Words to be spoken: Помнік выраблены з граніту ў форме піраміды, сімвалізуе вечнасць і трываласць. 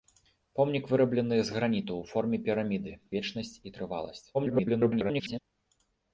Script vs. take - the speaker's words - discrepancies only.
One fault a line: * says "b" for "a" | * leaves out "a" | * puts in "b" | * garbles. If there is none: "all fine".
* leaves out "сімвалізуе"
* garbles